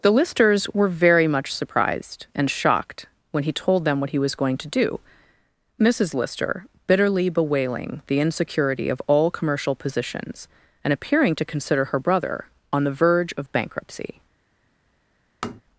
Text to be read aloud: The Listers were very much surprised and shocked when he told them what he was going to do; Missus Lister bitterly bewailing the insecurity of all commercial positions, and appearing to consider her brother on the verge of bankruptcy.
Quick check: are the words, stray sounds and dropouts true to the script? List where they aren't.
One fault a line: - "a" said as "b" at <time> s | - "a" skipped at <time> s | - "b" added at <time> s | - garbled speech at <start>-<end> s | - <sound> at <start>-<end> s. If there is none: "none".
- tap at 15.4-15.6 s